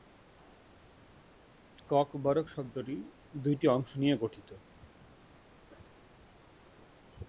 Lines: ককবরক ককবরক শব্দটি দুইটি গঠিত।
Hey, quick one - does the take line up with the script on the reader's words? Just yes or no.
no